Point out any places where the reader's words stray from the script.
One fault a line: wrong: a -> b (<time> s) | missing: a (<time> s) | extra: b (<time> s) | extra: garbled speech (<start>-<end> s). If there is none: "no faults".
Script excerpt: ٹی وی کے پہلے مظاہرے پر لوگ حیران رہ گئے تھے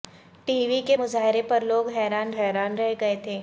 missing: پہلے (1.0 s)
extra: حیران (2.3 s)